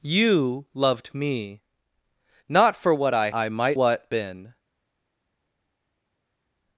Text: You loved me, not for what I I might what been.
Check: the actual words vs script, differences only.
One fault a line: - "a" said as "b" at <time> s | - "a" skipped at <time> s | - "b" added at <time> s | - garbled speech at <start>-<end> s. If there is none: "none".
none